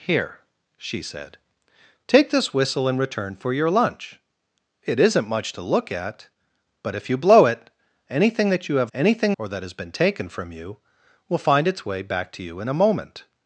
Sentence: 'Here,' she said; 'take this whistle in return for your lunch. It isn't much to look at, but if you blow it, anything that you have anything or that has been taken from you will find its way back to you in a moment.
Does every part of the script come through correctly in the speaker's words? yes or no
yes